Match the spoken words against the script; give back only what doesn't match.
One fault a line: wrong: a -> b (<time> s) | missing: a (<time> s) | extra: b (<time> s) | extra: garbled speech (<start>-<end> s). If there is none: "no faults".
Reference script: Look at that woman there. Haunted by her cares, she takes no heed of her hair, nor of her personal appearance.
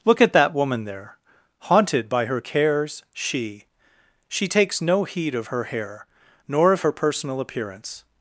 extra: she (4.3 s)